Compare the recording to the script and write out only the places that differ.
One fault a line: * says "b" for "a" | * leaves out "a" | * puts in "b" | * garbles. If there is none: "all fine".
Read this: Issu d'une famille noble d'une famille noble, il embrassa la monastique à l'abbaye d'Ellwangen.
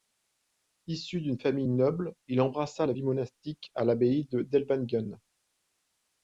* leaves out "d'une famille noble"
* puts in "vie"